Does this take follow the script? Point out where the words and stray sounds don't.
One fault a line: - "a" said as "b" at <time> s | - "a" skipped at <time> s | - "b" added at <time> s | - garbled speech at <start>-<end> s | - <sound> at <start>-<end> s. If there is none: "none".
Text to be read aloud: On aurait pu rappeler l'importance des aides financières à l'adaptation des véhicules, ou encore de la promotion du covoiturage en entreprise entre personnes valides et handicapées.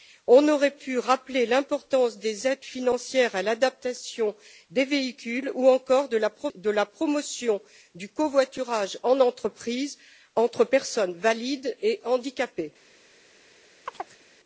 - chirp at 13.9-14.2 s